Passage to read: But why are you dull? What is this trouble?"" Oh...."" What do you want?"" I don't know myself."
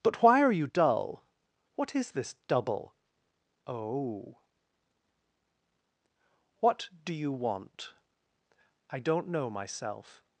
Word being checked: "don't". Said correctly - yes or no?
yes